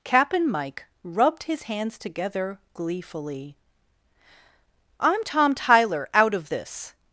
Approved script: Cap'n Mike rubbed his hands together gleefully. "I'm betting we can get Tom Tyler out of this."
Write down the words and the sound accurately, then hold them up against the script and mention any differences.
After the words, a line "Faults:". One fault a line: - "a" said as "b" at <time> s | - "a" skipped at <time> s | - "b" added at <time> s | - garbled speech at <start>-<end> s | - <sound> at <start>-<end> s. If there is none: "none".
Cap'n Mike rubbed his hands together gleefully. "I'm Tom Tyler out of this."
Faults:
- "betting we can get" skipped at 5.2 s